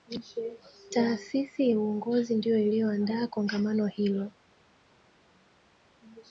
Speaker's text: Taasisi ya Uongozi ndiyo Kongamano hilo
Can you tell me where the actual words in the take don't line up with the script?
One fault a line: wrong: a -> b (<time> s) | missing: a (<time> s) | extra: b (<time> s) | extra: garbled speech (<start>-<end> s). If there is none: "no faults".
extra: iliyoandaa (2.6 s)